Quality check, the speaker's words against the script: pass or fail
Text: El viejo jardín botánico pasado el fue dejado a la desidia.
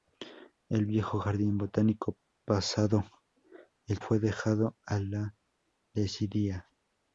pass